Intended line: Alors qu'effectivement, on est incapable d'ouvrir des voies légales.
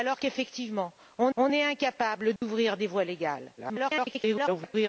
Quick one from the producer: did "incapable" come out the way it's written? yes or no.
yes